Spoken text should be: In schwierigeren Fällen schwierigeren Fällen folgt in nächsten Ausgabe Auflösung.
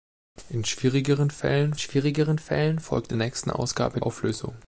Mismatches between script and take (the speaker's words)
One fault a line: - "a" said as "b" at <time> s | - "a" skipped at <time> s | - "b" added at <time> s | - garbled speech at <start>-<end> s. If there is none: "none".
none